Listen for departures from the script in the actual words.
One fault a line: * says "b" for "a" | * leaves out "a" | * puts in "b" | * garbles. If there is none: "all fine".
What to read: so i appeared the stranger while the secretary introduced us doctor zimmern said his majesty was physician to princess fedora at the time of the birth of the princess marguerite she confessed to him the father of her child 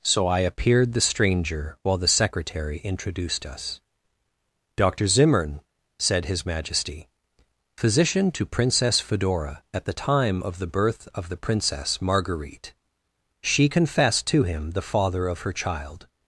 * leaves out "was"